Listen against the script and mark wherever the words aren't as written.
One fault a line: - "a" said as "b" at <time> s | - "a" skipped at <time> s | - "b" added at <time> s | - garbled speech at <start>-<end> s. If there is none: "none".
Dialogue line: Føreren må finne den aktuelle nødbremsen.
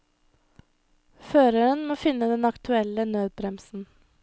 none